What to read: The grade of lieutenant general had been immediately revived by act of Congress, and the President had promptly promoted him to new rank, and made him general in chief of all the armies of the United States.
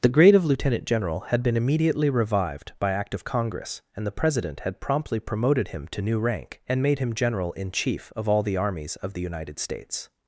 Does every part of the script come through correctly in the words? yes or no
yes